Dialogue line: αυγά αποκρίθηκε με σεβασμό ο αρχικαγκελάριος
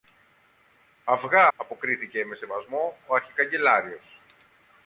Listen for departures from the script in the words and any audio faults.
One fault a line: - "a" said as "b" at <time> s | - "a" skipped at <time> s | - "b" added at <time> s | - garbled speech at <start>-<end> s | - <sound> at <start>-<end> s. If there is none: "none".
none